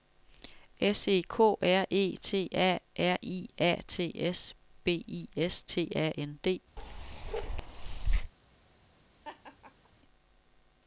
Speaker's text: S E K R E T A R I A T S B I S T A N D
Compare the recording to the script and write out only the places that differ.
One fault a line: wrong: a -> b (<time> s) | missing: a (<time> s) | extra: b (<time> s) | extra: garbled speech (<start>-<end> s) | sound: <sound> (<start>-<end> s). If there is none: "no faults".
sound: bark (6.8-8.3 s)
sound: laugh (9.2-9.9 s)